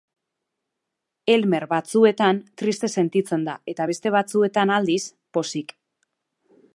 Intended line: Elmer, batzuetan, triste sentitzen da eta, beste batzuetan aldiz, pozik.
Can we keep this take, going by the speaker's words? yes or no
yes